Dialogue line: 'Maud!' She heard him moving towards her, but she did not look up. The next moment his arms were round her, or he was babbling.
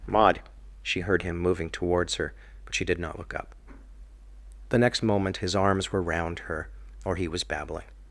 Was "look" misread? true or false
false